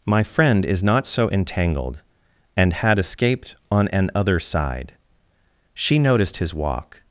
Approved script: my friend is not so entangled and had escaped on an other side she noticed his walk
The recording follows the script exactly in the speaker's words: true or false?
true